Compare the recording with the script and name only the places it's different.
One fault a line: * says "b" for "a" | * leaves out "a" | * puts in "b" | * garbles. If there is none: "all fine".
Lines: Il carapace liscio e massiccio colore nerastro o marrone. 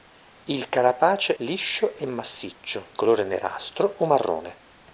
all fine